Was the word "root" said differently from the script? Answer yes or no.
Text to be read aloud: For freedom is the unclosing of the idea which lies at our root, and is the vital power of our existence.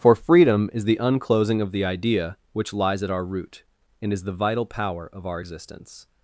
no